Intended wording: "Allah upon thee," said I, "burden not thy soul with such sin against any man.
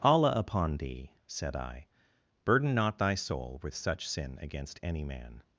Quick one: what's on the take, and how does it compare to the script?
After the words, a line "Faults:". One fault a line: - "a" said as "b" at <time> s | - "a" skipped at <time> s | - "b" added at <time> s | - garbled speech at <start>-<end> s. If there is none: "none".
"Allah upon thee," said I, "burden not thy soul with such sin against any man.
Faults:
none